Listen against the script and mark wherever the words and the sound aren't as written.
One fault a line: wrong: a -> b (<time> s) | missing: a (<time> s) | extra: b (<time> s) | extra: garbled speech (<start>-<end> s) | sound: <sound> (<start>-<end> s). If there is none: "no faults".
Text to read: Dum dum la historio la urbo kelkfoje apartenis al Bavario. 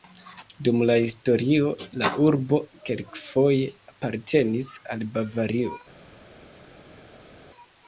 missing: dum (0.8 s)